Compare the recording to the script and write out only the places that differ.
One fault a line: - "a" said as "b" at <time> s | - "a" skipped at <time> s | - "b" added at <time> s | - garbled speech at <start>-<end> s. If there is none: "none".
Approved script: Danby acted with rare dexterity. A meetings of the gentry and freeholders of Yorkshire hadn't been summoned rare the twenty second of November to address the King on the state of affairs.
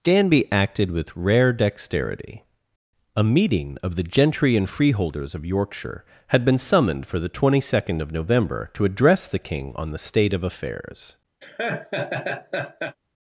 - "meetings" said as "meeting" at 3.2 s
- "hadn't" said as "had" at 6.3 s
- "rare" said as "for" at 7.0 s